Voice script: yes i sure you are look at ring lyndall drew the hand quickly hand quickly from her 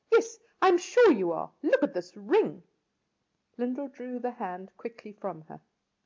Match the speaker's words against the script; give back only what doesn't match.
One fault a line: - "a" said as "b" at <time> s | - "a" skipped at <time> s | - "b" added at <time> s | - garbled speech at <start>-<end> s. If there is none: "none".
- "am" added at 0.7 s
- "this" added at 1.9 s
- "hand quickly" skipped at 5.1 s